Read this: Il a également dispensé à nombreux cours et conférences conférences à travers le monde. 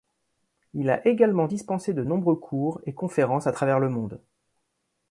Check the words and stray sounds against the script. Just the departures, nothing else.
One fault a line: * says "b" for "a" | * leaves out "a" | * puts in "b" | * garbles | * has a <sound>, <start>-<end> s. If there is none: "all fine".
* says "de" for "à"
* leaves out "conférences"